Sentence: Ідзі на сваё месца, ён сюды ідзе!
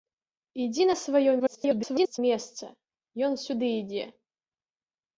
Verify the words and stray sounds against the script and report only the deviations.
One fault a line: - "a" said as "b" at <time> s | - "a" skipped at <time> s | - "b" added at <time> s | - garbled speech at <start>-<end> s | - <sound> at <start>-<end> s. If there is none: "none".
- garbled speech at 1.4-2.2 s